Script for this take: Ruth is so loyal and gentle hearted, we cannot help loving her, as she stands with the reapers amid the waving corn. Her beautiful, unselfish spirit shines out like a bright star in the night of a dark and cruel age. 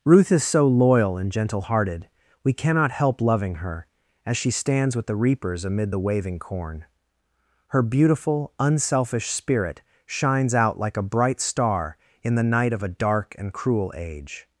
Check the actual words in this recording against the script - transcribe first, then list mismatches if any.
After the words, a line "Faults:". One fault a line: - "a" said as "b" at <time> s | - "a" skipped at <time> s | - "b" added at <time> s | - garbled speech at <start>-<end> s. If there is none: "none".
Ruth is so loyal and gentle hearted, we cannot help loving her, as she stands with the reapers amid the waving corn. Her beautiful, unselfish spirit shines out like a bright star in the night of a dark and cruel age.
Faults:
none